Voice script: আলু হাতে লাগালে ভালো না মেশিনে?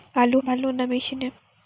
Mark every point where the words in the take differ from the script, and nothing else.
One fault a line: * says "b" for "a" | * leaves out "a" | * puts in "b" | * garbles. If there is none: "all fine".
* leaves out "হাতে লাগালে"